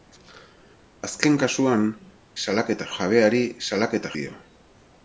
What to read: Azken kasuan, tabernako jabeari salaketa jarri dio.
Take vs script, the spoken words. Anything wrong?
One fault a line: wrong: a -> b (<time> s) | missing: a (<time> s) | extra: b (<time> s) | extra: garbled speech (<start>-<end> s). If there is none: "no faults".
wrong: tabernako -> salaketa (2.4 s)
missing: jarri (4.1 s)